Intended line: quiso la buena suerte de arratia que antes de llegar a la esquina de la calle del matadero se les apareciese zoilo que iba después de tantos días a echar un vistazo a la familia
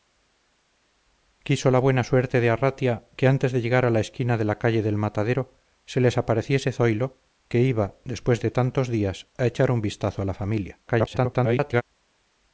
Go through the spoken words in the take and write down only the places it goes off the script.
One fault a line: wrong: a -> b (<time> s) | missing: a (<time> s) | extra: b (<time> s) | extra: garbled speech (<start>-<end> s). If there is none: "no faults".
extra: garbled speech (10.9-11.8 s)